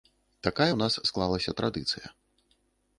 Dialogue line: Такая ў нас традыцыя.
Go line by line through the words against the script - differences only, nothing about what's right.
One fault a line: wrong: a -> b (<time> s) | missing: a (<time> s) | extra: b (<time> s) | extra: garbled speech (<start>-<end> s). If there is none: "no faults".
extra: склалася (1.1 s)